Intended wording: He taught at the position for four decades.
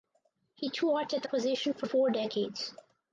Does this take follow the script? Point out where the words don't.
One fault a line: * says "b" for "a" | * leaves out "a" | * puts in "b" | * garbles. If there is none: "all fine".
all fine